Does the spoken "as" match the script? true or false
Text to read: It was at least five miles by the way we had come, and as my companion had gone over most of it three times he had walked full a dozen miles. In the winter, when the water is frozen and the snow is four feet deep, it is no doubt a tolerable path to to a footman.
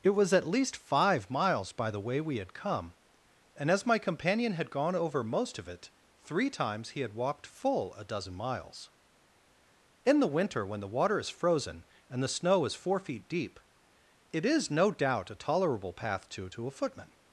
true